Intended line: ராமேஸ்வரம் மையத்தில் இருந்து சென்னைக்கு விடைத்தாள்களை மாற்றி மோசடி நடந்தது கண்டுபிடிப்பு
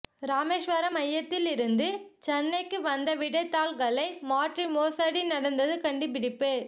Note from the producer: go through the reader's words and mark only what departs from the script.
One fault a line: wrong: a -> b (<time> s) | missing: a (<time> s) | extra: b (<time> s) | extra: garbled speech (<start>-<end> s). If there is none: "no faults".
extra: வந்த (2.8 s)